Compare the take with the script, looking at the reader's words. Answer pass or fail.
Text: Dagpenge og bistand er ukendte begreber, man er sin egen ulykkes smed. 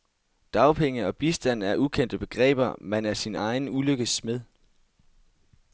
pass